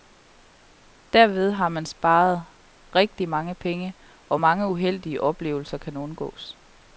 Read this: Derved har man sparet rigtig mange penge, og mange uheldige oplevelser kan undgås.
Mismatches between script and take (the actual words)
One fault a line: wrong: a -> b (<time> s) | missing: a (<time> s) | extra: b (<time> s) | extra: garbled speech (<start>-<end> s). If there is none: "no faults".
no faults